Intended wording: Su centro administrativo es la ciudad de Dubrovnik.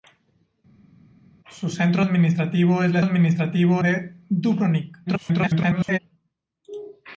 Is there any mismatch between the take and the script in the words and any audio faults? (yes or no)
yes